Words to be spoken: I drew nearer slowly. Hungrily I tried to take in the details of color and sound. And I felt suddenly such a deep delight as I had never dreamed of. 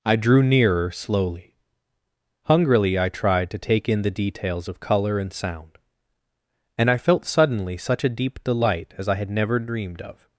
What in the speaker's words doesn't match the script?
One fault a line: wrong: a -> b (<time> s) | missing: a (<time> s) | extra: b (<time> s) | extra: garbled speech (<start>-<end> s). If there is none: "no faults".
no faults